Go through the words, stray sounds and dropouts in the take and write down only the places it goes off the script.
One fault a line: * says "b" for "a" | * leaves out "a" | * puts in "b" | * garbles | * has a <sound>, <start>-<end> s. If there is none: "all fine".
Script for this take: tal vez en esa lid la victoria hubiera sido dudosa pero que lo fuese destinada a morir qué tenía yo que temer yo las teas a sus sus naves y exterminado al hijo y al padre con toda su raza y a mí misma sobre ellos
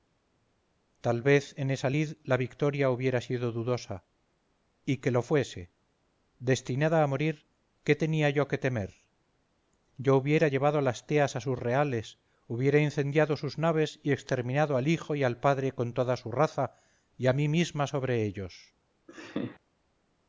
* says "y" for "pero"
* puts in "hubiera llevado"
* puts in "reales hubiera incendiado"
* has a laugh, 19.1-19.6 s